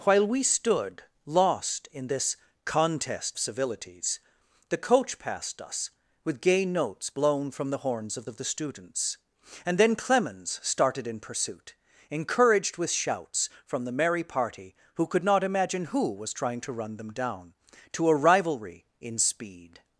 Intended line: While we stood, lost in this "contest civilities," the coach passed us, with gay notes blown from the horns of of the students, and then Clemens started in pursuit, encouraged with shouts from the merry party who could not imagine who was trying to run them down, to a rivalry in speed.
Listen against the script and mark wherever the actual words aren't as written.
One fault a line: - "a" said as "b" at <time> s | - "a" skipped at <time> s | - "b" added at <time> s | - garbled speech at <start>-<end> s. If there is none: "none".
none